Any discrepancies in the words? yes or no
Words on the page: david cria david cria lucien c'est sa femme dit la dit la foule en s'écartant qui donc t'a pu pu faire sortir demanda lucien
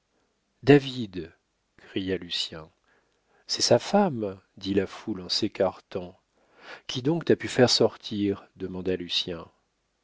yes